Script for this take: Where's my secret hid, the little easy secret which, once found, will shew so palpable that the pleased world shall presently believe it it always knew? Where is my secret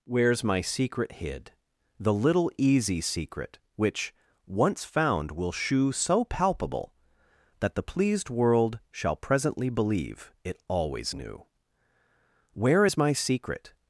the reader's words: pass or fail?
fail